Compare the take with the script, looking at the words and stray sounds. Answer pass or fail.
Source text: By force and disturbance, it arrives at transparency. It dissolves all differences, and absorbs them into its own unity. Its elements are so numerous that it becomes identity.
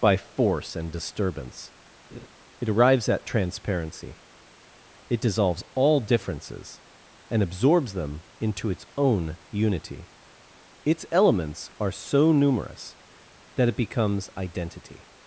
fail